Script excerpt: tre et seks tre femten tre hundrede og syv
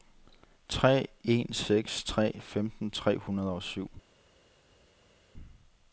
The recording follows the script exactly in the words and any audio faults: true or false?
false